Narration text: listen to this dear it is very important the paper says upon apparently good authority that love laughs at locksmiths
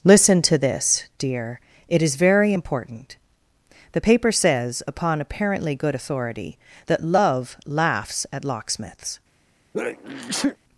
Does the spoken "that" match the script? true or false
true